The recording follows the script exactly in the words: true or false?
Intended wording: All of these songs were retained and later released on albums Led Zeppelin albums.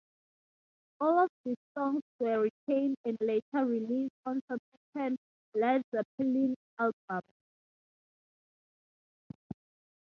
false